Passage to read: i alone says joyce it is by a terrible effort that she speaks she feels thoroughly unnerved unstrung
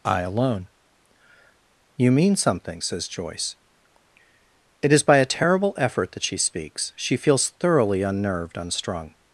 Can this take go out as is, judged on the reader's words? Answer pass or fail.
fail